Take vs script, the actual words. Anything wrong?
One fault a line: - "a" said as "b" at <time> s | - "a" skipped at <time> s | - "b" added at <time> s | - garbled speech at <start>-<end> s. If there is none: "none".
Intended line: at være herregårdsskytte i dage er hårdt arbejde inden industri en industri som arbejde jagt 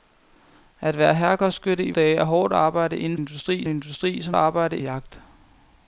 none